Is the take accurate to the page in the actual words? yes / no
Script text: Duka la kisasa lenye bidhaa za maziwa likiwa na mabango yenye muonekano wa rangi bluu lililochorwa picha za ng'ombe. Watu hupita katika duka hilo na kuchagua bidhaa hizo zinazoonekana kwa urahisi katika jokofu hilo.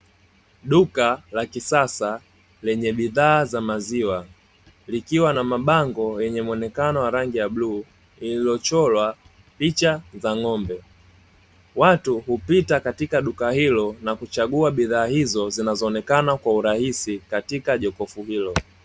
no